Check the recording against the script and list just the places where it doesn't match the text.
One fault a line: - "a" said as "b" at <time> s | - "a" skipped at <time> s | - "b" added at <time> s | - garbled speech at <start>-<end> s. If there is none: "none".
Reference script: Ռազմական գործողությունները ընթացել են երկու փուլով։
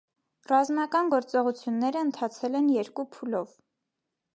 none